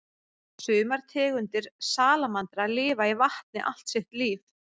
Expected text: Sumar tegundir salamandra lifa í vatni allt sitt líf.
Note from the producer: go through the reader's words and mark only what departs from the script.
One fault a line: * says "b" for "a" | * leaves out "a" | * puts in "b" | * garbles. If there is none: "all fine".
all fine